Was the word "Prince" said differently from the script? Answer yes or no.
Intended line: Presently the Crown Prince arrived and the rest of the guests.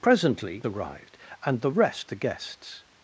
yes